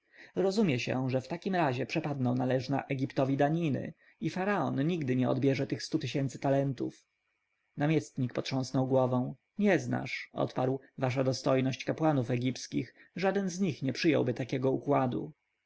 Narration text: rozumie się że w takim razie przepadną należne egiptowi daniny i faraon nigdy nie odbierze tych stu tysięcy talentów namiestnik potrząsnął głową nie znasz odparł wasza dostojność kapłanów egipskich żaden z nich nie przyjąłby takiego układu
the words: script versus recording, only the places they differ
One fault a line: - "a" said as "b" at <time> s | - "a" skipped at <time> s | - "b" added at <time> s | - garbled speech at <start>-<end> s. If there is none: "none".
none